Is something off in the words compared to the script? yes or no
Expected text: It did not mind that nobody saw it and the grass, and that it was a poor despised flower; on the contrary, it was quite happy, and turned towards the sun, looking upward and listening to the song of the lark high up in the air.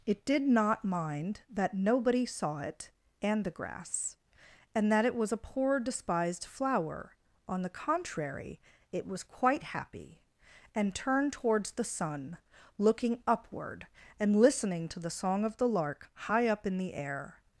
no